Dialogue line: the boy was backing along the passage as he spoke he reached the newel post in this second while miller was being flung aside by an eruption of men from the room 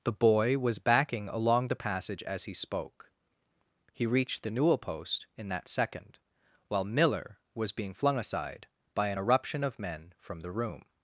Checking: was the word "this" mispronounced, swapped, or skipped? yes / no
yes